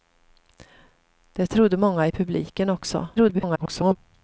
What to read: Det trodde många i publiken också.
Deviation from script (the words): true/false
true